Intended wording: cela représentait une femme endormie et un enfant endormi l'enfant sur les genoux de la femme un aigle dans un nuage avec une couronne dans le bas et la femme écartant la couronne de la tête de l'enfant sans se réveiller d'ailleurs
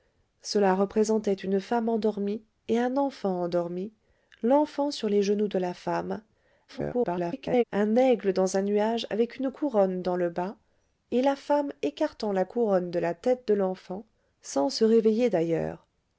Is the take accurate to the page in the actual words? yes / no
no